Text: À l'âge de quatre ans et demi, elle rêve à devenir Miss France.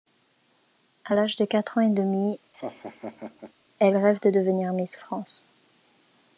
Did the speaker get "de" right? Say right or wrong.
right